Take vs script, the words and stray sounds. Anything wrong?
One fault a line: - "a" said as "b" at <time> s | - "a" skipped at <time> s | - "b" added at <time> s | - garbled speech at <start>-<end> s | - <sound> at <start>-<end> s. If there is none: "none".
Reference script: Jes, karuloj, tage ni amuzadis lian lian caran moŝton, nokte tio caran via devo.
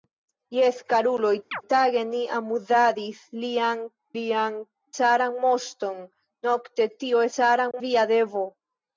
- chirp at 1.5-1.6 s
- dropout at 7.7-7.7 s